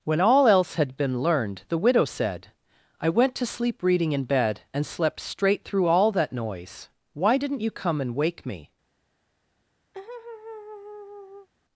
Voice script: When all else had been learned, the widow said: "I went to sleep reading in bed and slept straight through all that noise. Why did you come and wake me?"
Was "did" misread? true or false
true